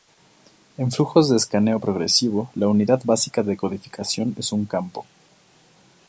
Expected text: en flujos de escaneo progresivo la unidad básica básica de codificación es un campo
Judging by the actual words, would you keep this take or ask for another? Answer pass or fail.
fail